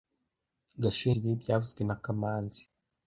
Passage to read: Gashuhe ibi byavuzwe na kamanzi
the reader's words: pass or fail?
pass